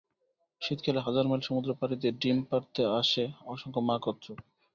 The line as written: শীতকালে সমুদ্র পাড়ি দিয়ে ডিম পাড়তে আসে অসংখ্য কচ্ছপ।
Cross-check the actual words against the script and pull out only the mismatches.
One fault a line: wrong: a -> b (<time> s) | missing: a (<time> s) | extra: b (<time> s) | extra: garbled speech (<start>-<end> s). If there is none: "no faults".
extra: হাজার মাইল (1.0 s)
extra: মা (3.8 s)